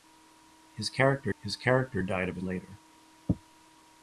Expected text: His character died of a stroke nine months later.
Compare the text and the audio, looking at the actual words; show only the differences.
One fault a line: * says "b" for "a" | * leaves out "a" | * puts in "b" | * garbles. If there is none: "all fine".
* puts in "his character"
* leaves out "stroke nine months"